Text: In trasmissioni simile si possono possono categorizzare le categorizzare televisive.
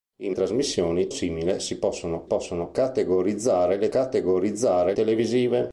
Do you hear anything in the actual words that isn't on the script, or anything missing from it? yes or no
no